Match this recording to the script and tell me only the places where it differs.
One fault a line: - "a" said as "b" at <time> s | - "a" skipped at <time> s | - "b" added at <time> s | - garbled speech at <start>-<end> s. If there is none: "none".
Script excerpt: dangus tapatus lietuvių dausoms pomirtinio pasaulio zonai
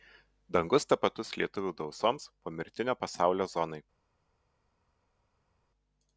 none